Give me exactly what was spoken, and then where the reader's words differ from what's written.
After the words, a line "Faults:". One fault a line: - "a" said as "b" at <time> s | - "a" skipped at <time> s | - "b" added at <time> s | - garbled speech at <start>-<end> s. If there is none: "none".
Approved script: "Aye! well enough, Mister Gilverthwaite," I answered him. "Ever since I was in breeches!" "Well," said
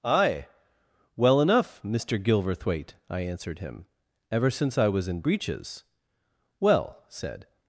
"Aye! well enough, Mister Gilverthwaite," I answered him. "Ever since I was in breeches!" "Well," said
Faults:
none